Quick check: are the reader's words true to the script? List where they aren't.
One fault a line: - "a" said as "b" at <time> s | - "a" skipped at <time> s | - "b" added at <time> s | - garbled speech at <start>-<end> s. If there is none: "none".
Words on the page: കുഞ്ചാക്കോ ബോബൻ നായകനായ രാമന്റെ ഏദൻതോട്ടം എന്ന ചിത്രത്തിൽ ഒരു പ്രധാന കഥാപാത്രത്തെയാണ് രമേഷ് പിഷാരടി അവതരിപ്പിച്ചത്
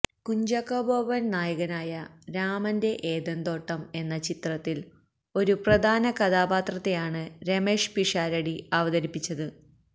none